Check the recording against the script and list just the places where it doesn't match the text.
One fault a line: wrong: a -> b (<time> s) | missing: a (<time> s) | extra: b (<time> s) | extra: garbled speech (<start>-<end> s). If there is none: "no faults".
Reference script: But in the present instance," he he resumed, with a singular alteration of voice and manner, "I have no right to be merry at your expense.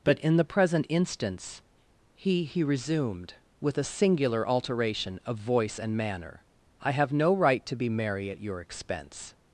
no faults